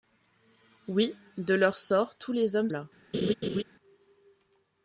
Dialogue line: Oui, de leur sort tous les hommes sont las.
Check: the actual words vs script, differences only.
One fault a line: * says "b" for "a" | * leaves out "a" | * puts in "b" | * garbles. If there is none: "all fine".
* leaves out "sont"